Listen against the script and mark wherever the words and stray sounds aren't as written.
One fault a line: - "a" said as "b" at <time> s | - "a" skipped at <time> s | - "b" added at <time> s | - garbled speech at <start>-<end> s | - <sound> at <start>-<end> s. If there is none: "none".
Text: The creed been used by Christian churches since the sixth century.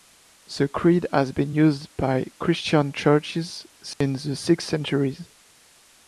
- "has" added at 1.1 s
- dropout at 3.9-4.0 s